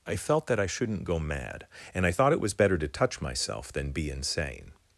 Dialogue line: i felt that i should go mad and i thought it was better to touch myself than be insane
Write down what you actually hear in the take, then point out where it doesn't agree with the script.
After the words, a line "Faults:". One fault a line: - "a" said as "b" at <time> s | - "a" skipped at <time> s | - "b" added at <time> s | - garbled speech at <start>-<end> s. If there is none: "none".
i felt that i shouldn't go mad and i thought it was better to touch myself than be insane
Faults:
- "should" said as "shouldn't" at 0.7 s